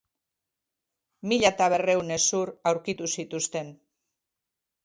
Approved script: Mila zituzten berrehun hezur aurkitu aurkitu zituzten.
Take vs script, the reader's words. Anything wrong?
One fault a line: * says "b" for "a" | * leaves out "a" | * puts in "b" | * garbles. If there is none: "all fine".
* says "eta" for "zituzten"
* leaves out "aurkitu"